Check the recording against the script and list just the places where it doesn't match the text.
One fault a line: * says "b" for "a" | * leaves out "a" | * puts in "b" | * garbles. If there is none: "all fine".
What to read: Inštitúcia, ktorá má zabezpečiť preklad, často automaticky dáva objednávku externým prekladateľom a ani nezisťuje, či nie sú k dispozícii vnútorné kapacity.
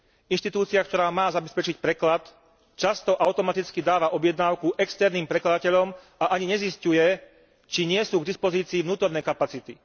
all fine